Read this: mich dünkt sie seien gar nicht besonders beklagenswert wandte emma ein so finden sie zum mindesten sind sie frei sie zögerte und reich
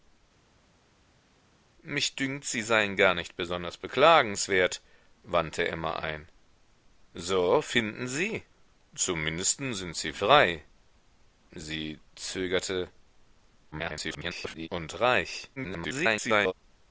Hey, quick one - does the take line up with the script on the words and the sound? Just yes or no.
no